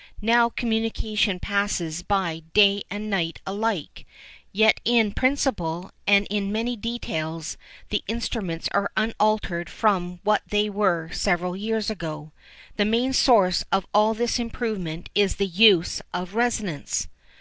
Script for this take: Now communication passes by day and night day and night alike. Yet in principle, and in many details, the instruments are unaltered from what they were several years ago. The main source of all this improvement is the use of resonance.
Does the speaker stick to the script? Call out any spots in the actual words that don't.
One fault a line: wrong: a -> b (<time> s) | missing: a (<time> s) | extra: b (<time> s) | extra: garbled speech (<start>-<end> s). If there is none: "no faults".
missing: day and night (3.4 s)